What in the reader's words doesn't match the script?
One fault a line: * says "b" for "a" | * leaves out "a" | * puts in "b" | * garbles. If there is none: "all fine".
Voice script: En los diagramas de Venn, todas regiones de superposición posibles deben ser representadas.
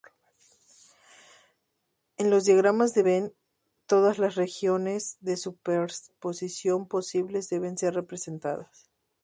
* puts in "las"